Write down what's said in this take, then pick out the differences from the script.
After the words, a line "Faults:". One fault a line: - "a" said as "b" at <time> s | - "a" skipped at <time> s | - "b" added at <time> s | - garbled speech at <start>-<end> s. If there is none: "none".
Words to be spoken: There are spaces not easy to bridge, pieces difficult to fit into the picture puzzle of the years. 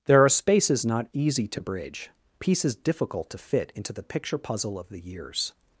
There are spaces not easy to bridge, pieces difficult to fit into the picture puzzle of the years.
Faults:
none